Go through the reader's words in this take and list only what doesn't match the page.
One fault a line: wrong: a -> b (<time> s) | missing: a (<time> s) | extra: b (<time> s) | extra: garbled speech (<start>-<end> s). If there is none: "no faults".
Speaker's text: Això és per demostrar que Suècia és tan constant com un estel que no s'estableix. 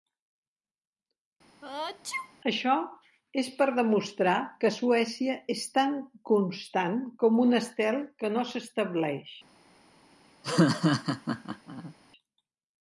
no faults